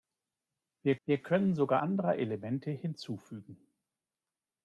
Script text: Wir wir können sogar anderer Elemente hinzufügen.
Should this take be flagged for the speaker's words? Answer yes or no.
no